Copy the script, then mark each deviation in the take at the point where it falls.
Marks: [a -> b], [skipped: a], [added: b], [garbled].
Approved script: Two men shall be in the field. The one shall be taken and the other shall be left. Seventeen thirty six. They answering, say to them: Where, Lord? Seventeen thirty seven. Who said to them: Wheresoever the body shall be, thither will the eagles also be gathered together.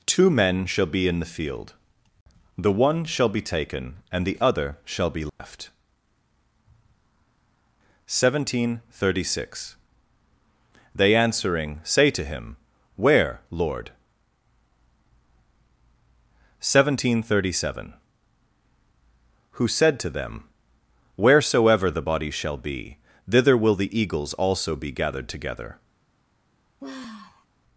Two men shall be in the field. The one shall be taken and the other shall be left. Seventeen thirty six. They answering, say to [them: -> him] Where, Lord? Seventeen thirty seven. Who said to them: Wheresoever the body shall be, thither will the eagles also be gathered together.